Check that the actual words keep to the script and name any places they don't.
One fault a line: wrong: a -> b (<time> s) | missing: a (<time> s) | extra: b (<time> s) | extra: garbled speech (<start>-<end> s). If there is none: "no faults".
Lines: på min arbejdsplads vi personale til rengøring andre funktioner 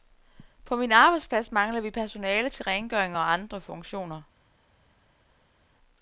extra: mangler (1.5 s)
extra: og (3.2 s)